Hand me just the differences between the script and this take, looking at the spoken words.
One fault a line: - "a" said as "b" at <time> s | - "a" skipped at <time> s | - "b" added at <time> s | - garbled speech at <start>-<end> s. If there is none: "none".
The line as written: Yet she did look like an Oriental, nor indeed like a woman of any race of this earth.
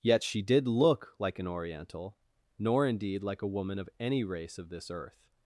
none